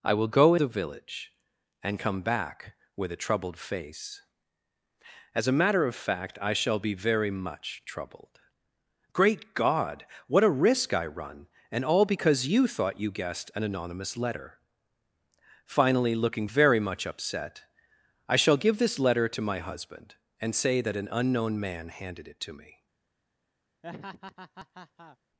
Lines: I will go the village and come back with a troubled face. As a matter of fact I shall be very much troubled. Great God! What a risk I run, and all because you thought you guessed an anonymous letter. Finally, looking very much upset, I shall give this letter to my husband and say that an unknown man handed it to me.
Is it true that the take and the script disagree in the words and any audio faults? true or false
true